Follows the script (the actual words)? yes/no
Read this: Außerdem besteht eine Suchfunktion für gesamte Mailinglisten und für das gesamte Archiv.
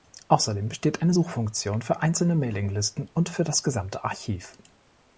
no